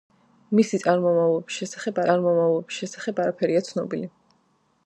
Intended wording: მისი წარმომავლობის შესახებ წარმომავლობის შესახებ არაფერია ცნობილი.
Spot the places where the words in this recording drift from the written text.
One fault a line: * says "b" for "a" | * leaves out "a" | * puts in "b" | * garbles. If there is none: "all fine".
all fine